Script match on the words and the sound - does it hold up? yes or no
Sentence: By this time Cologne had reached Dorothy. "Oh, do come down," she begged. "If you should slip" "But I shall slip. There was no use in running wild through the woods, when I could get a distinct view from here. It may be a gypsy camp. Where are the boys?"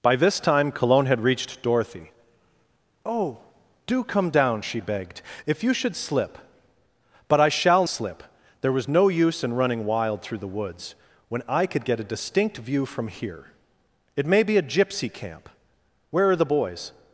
yes